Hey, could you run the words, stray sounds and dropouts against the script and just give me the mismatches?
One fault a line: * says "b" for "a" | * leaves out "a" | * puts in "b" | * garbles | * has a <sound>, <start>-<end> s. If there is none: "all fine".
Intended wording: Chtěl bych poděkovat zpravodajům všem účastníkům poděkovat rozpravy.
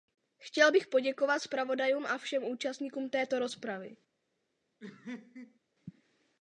* puts in "a"
* says "této" for "poděkovat"
* has a laugh, 4.8-5.6 s